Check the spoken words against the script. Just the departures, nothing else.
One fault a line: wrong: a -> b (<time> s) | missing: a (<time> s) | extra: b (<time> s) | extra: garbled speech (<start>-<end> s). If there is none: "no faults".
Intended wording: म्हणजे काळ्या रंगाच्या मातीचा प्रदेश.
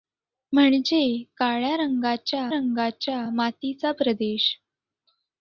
extra: रंगाच्या (2.5 s)